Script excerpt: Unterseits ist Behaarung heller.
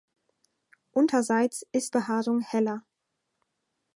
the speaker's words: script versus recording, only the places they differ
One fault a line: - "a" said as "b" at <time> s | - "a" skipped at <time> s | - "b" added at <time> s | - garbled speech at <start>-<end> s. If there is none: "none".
none